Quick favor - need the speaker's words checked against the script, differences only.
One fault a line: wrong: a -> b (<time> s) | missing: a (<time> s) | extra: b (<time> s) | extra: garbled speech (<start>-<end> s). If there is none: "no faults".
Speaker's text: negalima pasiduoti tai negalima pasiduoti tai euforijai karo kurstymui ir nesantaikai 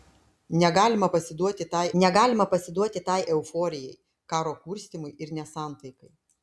no faults